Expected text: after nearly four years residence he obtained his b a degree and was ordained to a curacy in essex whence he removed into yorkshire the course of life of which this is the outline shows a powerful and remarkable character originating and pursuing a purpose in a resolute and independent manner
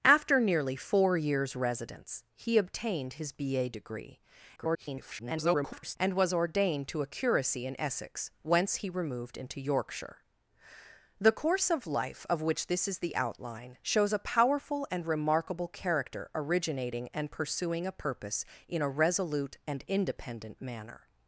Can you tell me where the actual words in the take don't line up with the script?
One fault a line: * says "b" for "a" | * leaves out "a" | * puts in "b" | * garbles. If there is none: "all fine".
* garbles